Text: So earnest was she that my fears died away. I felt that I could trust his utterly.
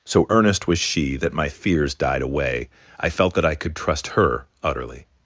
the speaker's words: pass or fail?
fail